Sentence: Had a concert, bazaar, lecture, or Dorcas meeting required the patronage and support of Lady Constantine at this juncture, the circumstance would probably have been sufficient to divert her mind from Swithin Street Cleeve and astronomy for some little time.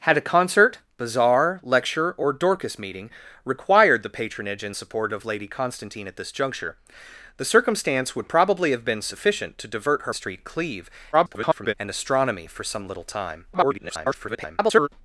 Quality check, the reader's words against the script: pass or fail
fail